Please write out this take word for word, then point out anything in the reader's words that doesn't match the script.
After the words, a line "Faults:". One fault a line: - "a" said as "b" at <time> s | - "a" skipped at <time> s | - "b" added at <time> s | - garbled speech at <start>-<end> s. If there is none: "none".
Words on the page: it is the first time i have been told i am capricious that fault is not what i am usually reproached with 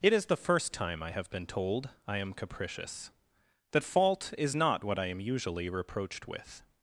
it is the first time i have been told i am capricious that fault is not what i am usually reproached with
Faults:
none